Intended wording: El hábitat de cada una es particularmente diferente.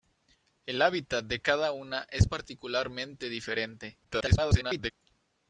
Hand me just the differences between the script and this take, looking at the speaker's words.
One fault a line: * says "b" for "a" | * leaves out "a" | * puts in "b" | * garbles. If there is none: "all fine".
* garbles